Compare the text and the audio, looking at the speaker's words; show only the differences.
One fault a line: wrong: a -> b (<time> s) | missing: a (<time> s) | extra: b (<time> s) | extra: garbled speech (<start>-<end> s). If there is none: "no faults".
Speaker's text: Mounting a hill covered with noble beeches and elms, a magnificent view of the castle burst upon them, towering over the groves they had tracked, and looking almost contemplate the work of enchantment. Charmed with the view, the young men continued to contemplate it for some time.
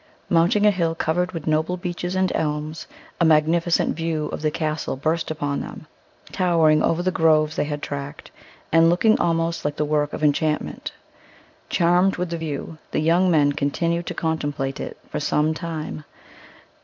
wrong: contemplate -> like (9.6 s)